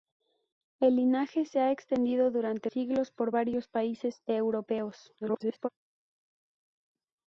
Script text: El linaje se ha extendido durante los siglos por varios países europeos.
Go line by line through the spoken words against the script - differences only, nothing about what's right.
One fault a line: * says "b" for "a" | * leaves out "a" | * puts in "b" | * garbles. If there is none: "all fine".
* leaves out "los"
* garbles